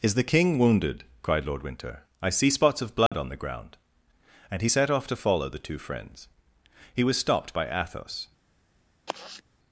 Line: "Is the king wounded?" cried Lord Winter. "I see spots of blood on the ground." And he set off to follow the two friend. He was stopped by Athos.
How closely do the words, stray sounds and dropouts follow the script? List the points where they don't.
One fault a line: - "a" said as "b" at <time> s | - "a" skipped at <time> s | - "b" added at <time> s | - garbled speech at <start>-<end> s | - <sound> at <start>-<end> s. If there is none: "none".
- dropout at 3.1-3.1 s
- "friend" said as "friends" at 5.8 s
- sigh at 9.1-9.4 s